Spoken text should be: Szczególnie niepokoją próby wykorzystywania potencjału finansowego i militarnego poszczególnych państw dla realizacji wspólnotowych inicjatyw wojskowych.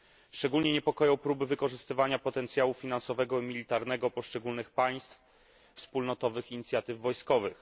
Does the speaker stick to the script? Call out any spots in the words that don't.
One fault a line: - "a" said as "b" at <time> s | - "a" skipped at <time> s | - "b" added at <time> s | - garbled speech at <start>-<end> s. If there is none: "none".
- "dla realizacji" skipped at 5.2 s